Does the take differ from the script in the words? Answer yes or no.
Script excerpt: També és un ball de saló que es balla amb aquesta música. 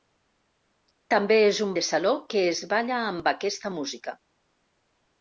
yes